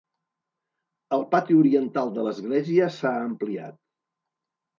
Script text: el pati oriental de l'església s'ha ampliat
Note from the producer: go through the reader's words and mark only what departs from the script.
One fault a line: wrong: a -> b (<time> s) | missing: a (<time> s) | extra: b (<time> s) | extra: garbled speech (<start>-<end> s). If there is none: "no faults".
no faults